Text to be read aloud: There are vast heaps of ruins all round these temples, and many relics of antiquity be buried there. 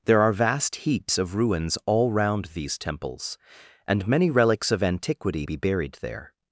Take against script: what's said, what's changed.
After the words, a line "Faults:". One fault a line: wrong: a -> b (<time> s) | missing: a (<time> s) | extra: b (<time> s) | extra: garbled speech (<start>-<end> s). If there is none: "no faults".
There are vast heaps of ruins all round these temples, and many relics of antiquity be buried there.
Faults:
no faults